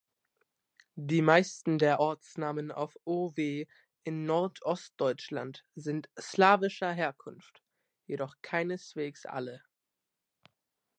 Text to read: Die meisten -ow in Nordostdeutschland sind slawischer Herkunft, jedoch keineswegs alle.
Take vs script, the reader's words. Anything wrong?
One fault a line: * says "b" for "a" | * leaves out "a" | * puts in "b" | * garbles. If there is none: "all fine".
* puts in "der Ortsnamen auf"